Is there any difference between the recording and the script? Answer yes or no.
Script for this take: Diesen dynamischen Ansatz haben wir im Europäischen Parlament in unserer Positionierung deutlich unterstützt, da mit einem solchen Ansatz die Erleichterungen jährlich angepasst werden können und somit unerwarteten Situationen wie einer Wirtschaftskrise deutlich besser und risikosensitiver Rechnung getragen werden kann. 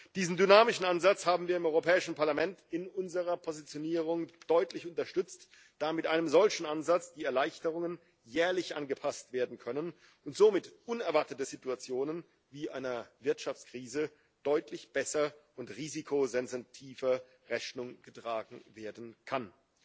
no